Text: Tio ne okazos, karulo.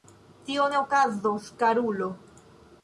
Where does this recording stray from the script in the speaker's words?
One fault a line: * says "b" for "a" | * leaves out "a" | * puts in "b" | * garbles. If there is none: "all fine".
all fine